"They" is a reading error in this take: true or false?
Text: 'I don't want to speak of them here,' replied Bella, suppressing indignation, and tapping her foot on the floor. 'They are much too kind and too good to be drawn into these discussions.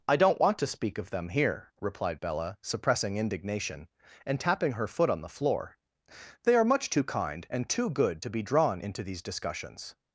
false